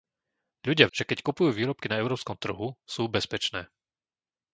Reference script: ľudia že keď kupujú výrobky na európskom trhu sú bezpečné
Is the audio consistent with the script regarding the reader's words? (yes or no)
yes